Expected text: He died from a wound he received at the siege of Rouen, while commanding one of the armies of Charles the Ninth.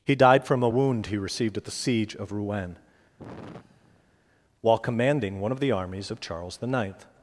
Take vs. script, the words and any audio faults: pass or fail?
fail